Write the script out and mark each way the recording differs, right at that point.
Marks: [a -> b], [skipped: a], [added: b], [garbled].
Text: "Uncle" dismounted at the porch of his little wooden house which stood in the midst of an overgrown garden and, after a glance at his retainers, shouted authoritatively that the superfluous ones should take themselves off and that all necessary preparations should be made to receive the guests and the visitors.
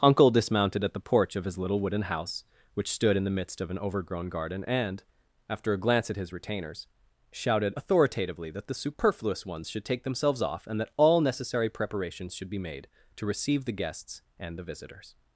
"Uncle" dismounted at the porch of his little wooden house which stood in the midst of an overgrown garden and, after a glance at his retainers, shouted authoritatively that the superfluous ones should take themselves off and that all necessary preparations should be made to receive the guests and the visitors.